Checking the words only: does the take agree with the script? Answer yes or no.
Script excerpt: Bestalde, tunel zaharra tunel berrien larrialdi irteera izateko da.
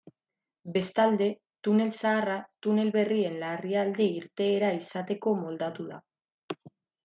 no